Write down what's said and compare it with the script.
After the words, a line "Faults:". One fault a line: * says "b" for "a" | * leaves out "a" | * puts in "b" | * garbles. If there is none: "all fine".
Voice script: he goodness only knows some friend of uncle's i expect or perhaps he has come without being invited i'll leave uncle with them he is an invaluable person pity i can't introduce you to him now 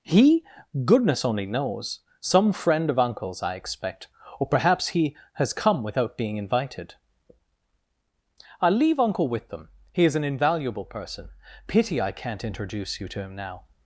he goodness only knows some friend of uncle's i expect or perhaps he has come without being invited i'll leave uncle with them he is an invaluable person pity i can't introduce you to him now
Faults:
all fine